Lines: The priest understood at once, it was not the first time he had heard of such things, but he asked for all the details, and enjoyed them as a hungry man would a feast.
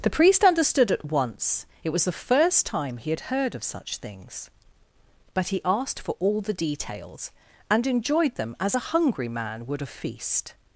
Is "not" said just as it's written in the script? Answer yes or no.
no